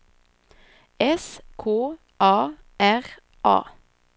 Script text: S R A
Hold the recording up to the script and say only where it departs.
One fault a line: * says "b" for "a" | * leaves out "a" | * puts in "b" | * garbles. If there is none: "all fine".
* puts in "K A"